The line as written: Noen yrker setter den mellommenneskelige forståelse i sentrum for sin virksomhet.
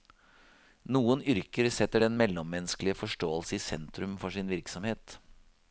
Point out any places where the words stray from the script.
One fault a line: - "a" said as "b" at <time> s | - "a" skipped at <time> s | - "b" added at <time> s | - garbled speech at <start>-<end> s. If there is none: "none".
none